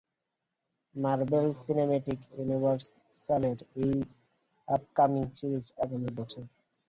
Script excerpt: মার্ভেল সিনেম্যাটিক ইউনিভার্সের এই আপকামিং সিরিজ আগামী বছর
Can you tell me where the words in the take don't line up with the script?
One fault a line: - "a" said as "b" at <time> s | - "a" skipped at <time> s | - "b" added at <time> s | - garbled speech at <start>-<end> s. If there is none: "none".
none